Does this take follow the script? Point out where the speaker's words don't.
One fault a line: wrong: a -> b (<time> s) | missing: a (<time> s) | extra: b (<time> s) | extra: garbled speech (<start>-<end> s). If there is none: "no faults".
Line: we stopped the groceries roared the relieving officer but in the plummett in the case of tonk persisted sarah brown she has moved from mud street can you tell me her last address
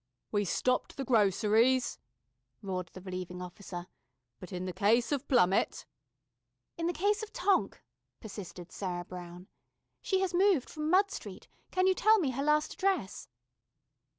extra: case of (4.7 s)